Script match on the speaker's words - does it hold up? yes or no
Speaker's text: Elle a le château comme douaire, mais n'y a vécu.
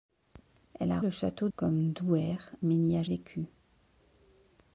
yes